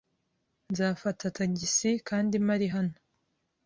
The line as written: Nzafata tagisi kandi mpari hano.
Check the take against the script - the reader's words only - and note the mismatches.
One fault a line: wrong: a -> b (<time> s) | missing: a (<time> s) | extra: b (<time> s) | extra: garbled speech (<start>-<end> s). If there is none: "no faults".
no faults